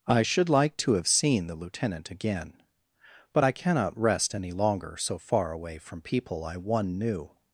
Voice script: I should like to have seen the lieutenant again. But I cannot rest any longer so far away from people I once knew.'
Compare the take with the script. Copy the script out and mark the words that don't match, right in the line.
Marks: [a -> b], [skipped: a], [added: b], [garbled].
I should like to have seen the lieutenant again. But I cannot rest any longer so far away from people I [once -> one] knew.'